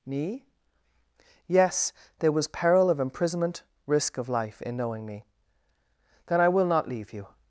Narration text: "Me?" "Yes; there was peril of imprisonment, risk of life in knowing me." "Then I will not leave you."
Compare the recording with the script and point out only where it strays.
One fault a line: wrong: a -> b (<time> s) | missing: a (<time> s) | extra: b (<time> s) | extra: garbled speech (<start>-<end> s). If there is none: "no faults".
no faults